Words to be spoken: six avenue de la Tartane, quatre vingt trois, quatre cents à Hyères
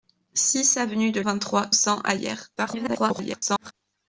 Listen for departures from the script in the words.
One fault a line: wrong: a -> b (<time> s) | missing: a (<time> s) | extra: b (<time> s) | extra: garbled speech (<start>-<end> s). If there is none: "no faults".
missing: la Tartane quatre (1.2 s)
missing: quatre (1.7 s)
extra: garbled speech (2.6-3.7 s)